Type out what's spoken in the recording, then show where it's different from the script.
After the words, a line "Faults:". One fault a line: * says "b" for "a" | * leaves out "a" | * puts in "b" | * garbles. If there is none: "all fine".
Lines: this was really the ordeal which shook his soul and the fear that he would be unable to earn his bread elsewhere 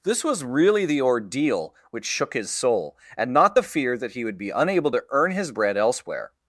this was really the ordeal which shook his soul and not the fear that he would be unable to earn his bread elsewhere
Faults:
* puts in "not"